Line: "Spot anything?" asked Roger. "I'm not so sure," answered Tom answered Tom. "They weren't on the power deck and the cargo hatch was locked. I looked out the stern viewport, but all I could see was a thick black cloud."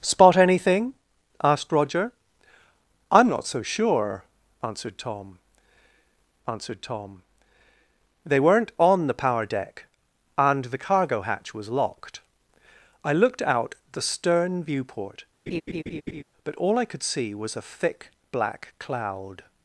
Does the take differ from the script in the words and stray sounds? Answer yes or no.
yes